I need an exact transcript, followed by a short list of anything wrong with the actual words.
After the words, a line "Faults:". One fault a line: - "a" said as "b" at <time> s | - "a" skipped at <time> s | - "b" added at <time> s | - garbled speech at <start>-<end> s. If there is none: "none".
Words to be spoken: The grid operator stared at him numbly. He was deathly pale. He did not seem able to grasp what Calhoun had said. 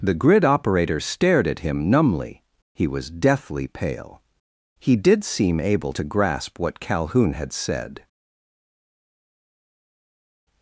The grid operator stared at him numbly. He was deathly pale. He did seem able to grasp what Calhoun had said.
Faults:
- "not" skipped at 5.2 s